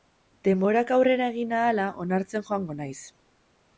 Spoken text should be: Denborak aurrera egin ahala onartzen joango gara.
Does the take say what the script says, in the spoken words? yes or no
no